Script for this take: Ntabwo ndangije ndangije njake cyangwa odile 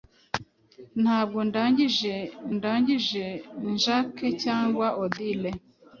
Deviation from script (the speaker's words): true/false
false